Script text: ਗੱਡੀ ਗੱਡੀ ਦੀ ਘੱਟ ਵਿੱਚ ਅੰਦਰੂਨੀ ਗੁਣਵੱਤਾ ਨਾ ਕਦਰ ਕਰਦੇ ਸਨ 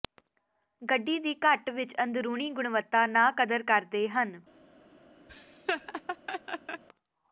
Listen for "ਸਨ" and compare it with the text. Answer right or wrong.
wrong